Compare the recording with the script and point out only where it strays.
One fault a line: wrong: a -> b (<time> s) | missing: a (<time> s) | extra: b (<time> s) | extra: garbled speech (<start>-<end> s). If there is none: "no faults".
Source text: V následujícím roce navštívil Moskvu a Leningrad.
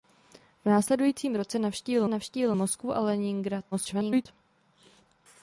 extra: navštívil (2.1 s)
extra: garbled speech (3.7-4.3 s)